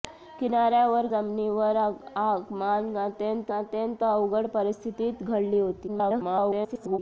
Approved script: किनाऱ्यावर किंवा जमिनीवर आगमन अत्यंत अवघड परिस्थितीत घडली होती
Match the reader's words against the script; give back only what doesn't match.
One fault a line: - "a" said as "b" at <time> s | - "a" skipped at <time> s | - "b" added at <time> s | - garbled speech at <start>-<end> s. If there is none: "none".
- "किंवा" skipped at 1.1 s
- "अत्यंत" added at 3.6 s
- garbled speech at 5.9-7.0 s